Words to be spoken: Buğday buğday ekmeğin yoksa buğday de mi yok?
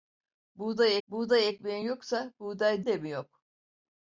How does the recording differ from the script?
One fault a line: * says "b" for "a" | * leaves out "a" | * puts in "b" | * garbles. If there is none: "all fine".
all fine